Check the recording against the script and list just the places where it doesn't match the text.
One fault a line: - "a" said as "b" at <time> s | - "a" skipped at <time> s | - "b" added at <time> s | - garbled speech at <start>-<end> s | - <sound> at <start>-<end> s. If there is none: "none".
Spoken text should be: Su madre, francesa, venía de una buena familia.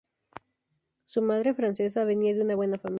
none